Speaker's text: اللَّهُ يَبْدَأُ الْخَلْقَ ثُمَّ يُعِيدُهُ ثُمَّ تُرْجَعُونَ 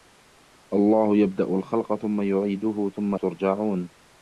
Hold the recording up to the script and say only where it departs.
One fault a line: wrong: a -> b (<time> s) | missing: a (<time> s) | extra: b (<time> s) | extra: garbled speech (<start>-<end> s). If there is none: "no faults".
no faults